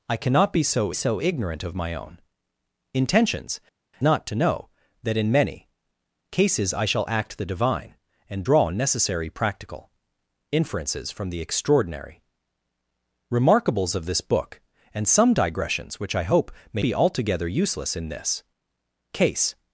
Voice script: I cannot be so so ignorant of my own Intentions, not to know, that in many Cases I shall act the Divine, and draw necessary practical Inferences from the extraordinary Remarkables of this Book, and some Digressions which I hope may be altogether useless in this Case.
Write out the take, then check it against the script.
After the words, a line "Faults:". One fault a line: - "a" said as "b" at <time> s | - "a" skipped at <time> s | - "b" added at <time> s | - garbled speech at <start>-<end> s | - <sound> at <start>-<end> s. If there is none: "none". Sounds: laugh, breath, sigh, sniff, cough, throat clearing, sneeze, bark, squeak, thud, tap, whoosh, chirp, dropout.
I cannot be so so ignorant of my own Intentions, not to know, that in many Cases I shall act the Divine, and draw necessary practical Inferences from the extraordinary Remarkables of this Book, and some Digressions which I hope may be altogether useless in this Case.
Faults:
none